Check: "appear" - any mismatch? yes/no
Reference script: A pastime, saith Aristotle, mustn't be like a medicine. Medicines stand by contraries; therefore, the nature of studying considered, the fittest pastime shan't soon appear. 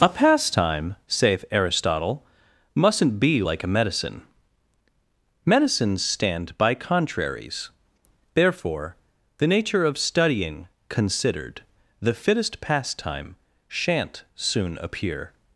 no